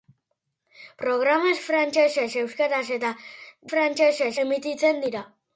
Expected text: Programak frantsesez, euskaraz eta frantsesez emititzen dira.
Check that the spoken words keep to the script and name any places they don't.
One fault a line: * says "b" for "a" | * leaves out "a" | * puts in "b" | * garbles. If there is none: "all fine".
all fine